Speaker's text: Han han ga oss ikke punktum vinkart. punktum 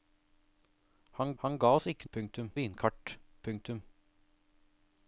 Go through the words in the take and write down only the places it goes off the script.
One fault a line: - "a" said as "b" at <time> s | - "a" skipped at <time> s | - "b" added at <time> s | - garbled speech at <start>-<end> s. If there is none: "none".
none